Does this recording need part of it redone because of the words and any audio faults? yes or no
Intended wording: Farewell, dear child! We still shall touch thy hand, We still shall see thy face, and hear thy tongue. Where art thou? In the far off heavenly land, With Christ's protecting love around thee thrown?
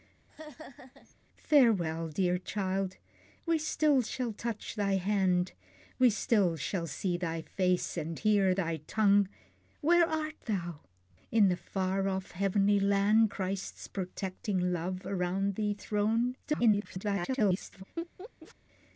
yes